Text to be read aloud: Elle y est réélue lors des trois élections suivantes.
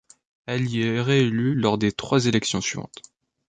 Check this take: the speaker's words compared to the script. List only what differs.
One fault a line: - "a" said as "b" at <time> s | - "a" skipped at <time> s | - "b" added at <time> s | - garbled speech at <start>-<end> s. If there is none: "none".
none